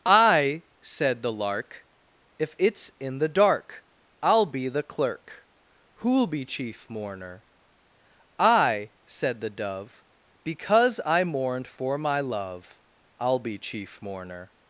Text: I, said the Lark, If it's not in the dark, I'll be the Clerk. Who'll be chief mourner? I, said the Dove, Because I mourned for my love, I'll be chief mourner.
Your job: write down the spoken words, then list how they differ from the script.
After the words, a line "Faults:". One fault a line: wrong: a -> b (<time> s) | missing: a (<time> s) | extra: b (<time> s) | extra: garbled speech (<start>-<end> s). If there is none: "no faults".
I, said the Lark, If it's in the dark, I'll be the Clerk. Who'll be chief mourner? I, said the Dove, Because I mourned for my love, I'll be chief mourner.
Faults:
missing: not (2.9 s)